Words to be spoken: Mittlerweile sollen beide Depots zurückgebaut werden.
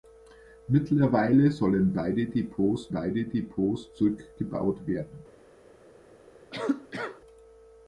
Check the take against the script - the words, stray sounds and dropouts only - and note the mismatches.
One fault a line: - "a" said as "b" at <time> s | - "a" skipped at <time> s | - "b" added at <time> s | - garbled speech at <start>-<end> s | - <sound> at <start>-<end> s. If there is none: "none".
- "beide Depots" added at 2.9 s
- cough at 6.5-7.2 s